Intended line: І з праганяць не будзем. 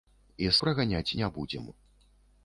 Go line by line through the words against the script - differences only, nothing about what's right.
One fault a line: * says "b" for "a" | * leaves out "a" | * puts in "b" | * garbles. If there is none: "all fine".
all fine